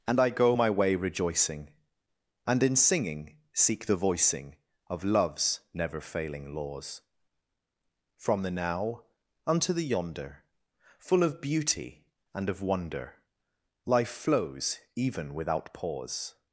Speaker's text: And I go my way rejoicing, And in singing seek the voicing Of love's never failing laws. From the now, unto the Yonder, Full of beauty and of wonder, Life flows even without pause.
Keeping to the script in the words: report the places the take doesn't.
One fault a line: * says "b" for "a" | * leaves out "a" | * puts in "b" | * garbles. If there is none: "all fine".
all fine